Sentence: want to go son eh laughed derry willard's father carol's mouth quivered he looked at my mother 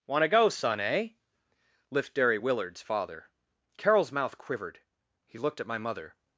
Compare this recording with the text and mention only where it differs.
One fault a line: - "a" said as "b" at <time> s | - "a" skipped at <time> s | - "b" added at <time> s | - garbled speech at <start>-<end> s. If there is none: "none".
- "laughed" said as "lift" at 1.9 s